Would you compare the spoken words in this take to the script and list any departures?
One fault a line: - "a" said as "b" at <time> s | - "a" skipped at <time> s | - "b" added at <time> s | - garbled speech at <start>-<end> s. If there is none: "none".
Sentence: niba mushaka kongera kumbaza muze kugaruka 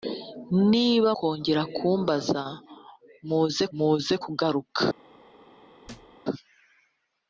- "mushaka" skipped at 1.1 s
- "muze" added at 3.8 s